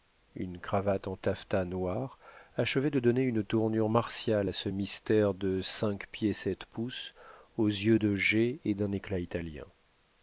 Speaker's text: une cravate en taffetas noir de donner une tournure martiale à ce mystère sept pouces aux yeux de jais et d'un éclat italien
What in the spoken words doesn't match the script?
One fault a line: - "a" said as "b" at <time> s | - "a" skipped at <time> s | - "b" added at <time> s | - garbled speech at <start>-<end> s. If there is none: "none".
- "achevait" added at 2.6 s
- "de cinq pieds" added at 5.3 s